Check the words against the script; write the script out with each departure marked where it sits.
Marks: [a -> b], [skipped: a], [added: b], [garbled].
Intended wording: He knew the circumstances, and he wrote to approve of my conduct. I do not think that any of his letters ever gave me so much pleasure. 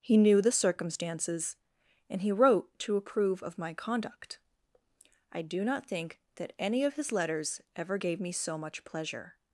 He knew the circumstances, and he wrote to approve of my conduct. I do not think that any of his letters ever gave me so much pleasure.